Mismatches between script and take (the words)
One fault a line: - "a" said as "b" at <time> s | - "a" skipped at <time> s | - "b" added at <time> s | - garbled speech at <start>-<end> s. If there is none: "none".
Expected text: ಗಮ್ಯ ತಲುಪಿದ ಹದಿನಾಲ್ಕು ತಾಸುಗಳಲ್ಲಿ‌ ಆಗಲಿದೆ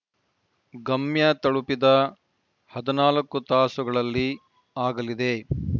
none